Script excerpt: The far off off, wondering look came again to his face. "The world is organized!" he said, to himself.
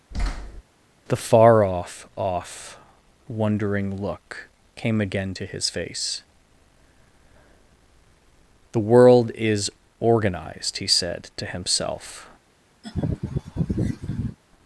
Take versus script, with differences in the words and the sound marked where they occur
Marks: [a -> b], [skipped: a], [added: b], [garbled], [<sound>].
[thud] The far off off, wondering look came again to his face. "The world is organized!" he said, to himself. [laugh]